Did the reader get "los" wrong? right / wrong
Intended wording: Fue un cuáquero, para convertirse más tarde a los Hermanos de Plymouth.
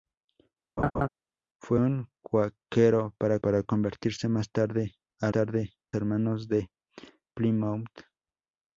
wrong